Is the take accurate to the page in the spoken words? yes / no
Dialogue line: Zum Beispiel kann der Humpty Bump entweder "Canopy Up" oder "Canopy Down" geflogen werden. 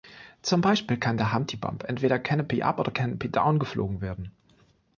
yes